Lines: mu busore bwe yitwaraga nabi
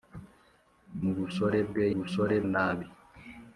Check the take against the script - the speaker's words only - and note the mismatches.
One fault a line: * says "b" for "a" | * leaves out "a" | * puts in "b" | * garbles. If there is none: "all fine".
* says "busore" for "yitwaraga"